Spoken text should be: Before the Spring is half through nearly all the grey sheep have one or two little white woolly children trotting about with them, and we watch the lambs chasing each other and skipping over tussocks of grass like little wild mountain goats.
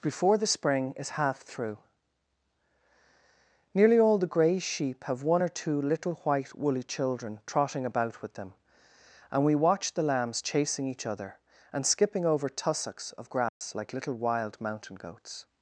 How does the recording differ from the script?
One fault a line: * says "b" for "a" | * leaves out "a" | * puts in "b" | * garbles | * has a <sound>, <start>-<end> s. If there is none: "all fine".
* has a dropout, 13.5-13.6 s